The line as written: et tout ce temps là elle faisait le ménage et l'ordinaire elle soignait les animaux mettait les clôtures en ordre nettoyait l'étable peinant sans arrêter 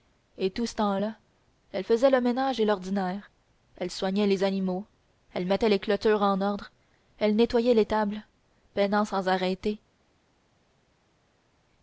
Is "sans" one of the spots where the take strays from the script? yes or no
no